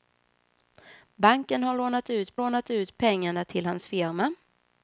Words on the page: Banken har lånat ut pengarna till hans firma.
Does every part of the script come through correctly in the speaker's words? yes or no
no